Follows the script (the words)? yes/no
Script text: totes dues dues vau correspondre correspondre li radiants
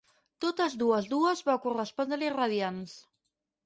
no